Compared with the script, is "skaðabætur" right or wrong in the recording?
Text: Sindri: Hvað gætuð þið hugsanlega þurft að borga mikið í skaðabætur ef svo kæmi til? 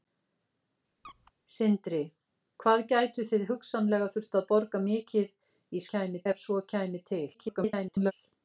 wrong